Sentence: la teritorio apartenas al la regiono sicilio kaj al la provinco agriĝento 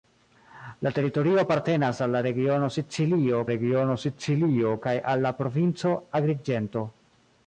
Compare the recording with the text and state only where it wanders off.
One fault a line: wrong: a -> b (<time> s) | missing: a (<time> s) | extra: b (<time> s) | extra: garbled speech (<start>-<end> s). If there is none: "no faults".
extra: regiono sicilio (3.5 s)